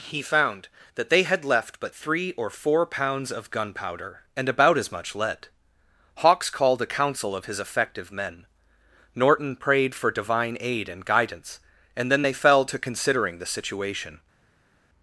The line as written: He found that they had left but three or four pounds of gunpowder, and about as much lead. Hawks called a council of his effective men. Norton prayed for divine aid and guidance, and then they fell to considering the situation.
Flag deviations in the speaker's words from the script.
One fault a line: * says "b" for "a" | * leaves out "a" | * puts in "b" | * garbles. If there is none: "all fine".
all fine